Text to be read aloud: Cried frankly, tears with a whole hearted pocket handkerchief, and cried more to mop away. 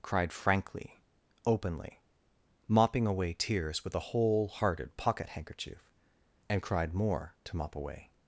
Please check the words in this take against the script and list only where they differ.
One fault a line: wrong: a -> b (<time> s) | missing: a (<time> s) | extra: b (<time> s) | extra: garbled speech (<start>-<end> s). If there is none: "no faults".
extra: openly mopping away (1.4 s)